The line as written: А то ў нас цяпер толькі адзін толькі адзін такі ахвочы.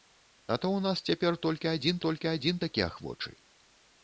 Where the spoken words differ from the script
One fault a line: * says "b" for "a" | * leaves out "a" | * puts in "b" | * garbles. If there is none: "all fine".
all fine